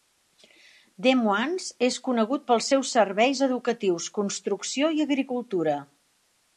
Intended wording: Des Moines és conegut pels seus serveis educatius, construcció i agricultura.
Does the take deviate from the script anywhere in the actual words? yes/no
no